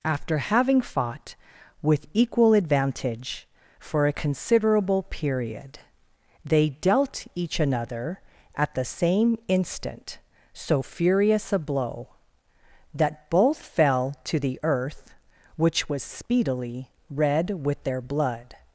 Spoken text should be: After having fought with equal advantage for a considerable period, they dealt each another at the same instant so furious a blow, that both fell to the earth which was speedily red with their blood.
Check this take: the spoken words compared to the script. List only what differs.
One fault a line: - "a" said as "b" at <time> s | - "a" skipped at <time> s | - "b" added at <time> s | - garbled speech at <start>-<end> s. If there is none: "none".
none